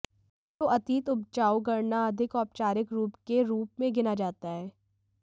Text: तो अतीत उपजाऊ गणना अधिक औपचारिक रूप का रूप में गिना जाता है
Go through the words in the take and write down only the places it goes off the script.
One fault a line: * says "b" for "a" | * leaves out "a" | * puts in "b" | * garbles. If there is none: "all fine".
* says "के" for "का"